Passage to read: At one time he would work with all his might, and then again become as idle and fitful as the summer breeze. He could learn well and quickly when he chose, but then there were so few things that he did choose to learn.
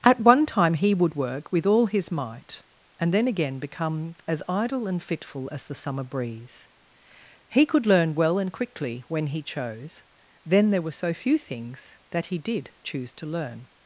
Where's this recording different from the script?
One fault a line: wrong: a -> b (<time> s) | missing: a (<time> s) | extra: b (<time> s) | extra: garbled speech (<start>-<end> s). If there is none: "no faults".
missing: but (10.0 s)